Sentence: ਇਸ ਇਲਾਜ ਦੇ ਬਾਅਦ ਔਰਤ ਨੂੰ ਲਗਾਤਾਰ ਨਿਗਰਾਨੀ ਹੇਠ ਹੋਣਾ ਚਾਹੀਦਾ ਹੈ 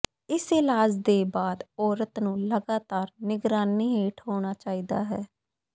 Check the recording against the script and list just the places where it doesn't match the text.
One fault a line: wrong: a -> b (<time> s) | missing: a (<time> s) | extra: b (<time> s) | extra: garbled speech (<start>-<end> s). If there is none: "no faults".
no faults